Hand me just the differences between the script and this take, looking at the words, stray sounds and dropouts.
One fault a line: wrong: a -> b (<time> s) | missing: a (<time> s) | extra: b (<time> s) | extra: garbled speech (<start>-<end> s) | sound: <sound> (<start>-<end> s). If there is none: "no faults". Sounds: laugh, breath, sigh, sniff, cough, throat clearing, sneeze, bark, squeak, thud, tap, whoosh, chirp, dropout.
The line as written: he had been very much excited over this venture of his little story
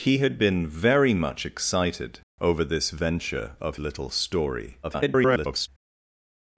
missing: his (3.8 s)
extra: garbled speech (4.8-5.7 s)